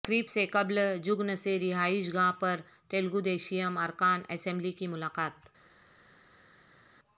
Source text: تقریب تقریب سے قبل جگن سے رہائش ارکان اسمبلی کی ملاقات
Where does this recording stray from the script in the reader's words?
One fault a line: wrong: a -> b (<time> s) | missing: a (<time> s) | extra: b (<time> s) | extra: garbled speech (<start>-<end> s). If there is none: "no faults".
missing: تقریب (0.3 s)
extra: گاہ پر تلگودیشم (2.1 s)